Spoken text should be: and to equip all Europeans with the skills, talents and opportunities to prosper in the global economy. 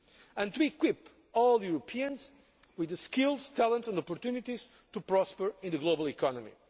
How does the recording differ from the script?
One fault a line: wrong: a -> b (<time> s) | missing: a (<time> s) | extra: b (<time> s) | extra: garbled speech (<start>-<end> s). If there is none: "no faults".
no faults